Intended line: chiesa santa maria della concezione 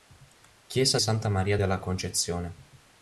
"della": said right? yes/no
yes